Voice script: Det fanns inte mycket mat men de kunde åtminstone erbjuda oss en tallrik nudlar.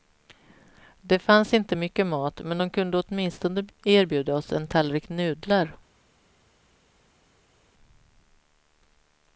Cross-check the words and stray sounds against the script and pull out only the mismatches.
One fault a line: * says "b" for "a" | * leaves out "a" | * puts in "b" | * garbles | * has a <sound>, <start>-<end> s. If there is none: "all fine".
all fine